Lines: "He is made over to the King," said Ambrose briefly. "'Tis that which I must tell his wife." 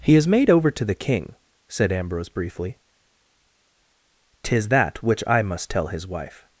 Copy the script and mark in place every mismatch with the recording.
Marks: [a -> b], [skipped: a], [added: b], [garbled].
"He is made over to the King," said Ambrose briefly. "'Tis that which I must tell his wife."